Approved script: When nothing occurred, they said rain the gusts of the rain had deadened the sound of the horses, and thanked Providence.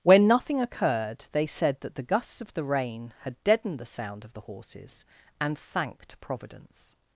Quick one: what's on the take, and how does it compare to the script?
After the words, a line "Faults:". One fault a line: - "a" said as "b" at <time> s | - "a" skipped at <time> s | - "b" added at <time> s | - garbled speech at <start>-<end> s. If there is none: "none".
When nothing occurred, they said that the gusts of the rain had deadened the sound of the horses, and thanked Providence.
Faults:
- "rain" said as "that" at 1.8 s